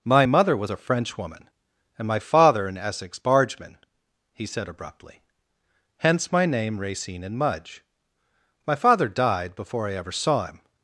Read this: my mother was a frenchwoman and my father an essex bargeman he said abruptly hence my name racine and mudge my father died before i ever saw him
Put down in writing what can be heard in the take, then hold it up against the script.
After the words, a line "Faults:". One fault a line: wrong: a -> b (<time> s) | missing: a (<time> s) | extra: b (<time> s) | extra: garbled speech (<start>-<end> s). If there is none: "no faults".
my mother was a frenchwoman and my father an essex bargeman he said abruptly hence my name racine and mudge my father died before i ever saw him
Faults:
no faults